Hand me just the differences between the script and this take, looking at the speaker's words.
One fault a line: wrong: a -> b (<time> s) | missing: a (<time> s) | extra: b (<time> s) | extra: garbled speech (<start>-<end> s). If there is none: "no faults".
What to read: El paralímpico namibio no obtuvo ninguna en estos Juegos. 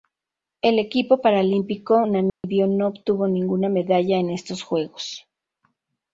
extra: equipo (0.8 s)
extra: medalla (3.7 s)